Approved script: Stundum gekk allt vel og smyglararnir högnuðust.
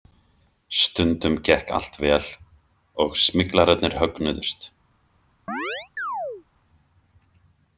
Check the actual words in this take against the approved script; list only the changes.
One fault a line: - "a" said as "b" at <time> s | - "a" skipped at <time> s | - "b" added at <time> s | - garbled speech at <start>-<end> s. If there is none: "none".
none